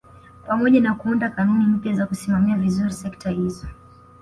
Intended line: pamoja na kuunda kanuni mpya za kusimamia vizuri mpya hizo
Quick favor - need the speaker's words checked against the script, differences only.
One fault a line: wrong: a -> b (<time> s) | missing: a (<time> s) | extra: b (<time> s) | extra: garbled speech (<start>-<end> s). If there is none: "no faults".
wrong: mpya -> sekta (2.9 s)